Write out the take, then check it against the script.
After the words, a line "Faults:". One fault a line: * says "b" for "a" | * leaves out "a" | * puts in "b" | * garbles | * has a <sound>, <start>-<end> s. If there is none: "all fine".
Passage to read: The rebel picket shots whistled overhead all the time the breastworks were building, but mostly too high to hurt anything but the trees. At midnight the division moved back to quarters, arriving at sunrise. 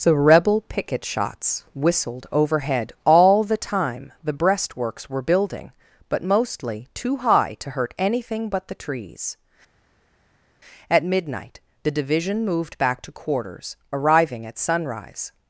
The rebel picket shots whistled overhead all the time the breastworks were building, but mostly too high to hurt anything but the trees. At midnight the division moved back to quarters, arriving at sunrise.
Faults:
all fine